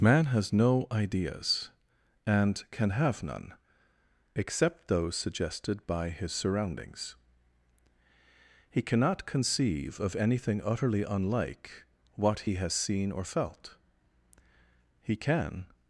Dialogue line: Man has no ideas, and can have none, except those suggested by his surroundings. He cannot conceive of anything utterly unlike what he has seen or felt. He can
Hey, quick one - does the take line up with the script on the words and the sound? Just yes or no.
yes